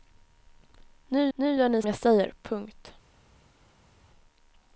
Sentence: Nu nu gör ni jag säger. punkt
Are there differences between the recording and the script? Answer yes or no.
no